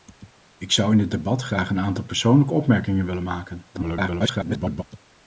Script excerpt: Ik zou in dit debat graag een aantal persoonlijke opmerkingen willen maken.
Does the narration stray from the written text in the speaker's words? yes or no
yes